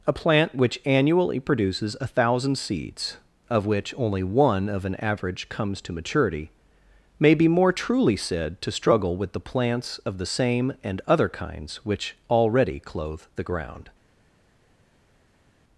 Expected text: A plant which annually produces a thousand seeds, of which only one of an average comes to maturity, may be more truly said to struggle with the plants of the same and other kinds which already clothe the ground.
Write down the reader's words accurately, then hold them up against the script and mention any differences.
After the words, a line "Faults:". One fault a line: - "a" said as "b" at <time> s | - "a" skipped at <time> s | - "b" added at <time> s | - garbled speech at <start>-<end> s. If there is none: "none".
A plant which annually produces a thousand seeds, of which only one of an average comes to maturity, may be more truly said to struggle with the plants of the same and other kinds which already clothe the ground.
Faults:
none